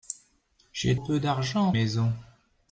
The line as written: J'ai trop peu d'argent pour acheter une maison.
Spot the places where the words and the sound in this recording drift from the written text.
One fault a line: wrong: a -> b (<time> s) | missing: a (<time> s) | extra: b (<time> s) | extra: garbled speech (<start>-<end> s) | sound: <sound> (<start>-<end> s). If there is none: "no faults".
missing: trop (1.0 s)
missing: pour acheter une (1.7 s)